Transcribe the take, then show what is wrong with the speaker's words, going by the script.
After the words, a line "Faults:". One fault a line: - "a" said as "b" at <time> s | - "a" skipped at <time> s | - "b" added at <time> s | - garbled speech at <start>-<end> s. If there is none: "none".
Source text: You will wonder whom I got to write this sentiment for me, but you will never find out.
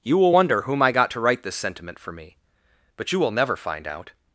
You will wonder whom I got to write this sentiment for me, but you will never find out.
Faults:
none